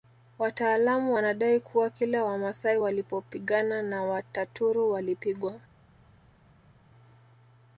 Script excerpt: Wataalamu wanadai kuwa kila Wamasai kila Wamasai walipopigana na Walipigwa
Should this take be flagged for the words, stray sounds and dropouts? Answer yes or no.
yes